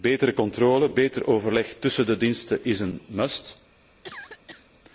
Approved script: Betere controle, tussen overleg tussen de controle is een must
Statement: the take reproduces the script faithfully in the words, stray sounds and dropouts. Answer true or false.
false